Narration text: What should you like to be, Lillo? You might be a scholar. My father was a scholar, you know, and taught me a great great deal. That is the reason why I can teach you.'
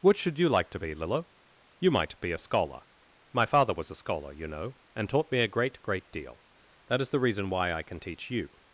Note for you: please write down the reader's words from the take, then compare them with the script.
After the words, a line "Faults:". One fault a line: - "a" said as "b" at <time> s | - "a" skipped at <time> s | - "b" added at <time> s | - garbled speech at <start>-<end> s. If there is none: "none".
What should you like to be, Lillo? You might be a scholar. My father was a scholar, you know, and taught me a great great deal. That is the reason why I can teach you.'
Faults:
none